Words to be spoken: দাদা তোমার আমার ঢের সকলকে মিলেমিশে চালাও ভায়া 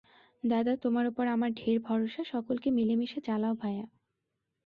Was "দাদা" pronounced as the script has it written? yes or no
yes